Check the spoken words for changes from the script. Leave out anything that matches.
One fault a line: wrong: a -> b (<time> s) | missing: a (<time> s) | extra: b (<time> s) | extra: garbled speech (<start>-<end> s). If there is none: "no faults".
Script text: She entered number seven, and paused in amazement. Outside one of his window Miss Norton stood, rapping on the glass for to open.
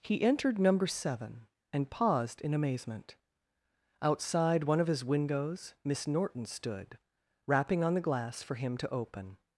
wrong: She -> He (0.0 s)
wrong: window -> windows (5.0 s)
extra: him (8.5 s)